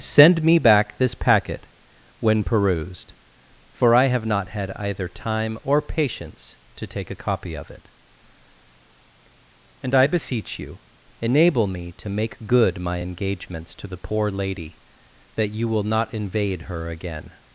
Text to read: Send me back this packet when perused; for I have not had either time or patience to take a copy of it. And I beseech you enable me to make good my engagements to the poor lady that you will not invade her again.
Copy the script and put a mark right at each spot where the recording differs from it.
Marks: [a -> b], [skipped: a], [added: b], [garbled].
Send me back this packet when perused; for I have not had either time or patience to take a copy of it. And I beseech you enable me to make good my engagements to the poor lady that you will not invade her again.